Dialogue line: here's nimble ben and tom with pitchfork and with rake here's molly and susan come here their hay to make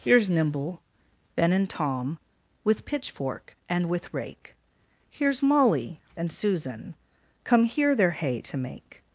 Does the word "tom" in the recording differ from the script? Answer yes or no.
no